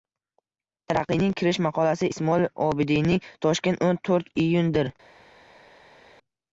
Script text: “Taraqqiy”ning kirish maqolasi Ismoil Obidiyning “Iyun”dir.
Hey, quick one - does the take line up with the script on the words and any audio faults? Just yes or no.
no